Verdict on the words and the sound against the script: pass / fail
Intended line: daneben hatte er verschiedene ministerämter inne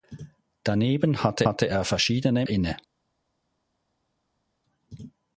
fail